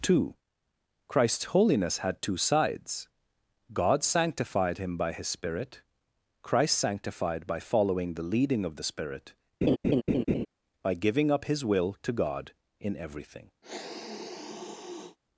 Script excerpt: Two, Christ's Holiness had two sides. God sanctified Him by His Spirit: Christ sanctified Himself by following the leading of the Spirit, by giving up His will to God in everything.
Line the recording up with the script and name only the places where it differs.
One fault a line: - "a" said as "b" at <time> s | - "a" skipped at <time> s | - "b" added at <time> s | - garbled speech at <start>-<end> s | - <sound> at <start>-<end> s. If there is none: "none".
- "Himself" skipped at 7.5 s
- laugh at 9.6-10.5 s
- sniff at 13.6-15.2 s